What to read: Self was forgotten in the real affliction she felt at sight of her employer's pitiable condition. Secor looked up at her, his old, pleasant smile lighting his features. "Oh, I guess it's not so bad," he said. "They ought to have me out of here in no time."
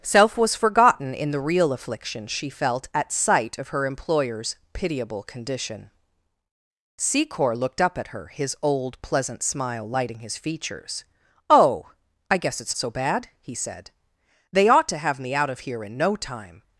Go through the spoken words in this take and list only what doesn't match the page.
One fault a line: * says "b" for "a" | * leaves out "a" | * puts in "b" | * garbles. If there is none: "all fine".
* leaves out "not"